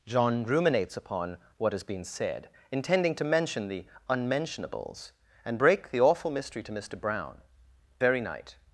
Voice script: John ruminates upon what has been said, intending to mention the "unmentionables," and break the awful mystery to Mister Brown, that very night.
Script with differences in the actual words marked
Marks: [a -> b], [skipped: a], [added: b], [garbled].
John ruminates upon what has been said, intending to mention the "unmentionables," and break the awful mystery to Mister Brown, [skipped: that] very night.